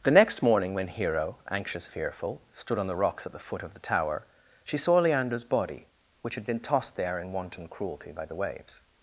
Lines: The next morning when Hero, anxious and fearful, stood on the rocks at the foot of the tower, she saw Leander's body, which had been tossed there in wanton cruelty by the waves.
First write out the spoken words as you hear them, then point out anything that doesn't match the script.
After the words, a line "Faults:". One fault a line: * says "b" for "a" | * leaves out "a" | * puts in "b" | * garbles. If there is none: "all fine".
The next morning when Hero, anxious fearful, stood on the rocks at the foot of the tower, she saw Leander's body, which had been tossed there in wanton cruelty by the waves.
Faults:
* leaves out "and"